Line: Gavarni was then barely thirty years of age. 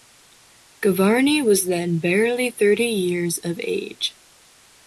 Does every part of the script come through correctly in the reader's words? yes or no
yes